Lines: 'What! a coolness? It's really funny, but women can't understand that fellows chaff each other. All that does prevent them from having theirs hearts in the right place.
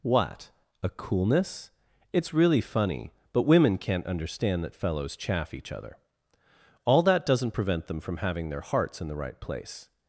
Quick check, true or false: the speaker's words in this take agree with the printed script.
false